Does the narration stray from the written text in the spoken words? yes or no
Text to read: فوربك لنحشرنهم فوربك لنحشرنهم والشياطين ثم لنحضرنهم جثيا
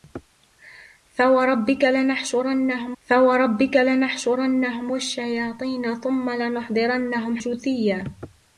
no